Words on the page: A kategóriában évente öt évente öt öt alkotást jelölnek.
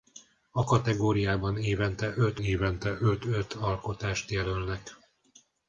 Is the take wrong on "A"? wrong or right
right